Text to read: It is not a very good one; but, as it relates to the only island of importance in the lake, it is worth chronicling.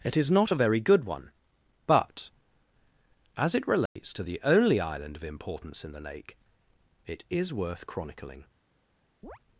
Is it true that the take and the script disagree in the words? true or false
false